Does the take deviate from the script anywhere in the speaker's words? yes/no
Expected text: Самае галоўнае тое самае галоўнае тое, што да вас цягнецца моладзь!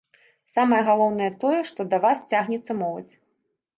yes